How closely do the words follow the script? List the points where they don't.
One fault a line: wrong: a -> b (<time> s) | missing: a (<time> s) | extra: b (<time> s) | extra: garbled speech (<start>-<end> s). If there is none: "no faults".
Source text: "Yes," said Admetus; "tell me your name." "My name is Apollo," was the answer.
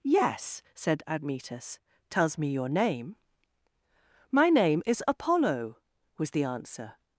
wrong: tell -> tells (2.1 s)